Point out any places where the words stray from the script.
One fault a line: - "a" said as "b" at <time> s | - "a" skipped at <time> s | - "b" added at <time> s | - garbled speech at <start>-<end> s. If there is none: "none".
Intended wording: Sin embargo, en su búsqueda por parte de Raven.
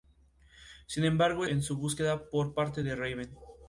none